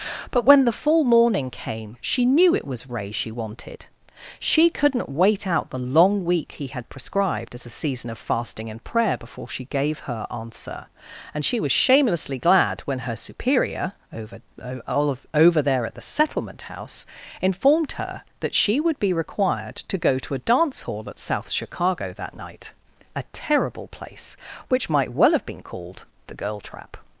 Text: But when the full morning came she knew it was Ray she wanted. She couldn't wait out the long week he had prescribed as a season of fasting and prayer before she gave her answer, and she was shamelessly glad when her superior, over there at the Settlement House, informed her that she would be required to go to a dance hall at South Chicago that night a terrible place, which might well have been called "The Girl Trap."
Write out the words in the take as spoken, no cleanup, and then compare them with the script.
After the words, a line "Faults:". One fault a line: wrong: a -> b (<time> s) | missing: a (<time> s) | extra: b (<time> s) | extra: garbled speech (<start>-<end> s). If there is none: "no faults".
But when the full morning came she knew it was Ray she wanted. She couldn't wait out the long week he had prescribed as a season of fasting and prayer before she gave her answer, and she was shamelessly glad when her superior, over over there at the Settlement House, informed her that she would be required to go to a dance hall at South Chicago that night a terrible place, which might well have been called "The Girl Trap."
Faults:
extra: over (15.3 s)